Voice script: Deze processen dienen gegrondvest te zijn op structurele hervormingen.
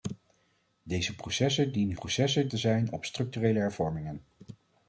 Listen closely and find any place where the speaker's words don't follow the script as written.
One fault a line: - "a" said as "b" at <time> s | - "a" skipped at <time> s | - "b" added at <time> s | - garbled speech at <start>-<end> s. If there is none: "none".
- "gegrondvest" said as "processen" at 1.9 s